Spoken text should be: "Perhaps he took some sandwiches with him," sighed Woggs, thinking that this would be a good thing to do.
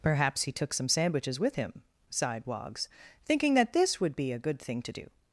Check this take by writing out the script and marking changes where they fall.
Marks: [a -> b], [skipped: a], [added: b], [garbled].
"Perhaps he took some sandwiches with him," sighed Woggs, thinking that this would be a good thing to do.